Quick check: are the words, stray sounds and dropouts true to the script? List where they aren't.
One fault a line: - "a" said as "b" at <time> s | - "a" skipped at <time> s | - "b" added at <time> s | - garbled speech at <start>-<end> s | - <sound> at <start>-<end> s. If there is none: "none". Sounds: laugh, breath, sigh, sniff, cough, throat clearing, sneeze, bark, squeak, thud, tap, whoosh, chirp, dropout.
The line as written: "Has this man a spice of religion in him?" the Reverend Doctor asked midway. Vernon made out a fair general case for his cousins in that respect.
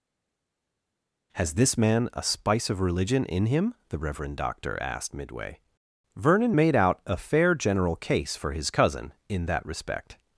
- "cousins" said as "cousin" at 8.7 s